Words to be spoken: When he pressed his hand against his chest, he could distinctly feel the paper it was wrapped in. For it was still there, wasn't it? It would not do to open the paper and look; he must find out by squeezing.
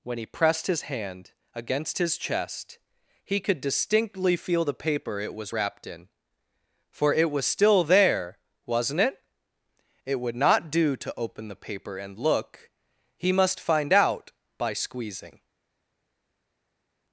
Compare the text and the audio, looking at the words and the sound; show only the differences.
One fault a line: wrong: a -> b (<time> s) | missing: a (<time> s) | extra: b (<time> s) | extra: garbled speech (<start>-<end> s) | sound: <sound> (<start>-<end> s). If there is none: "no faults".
no faults